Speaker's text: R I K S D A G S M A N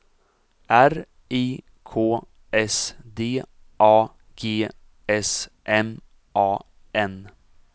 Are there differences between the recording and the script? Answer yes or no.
no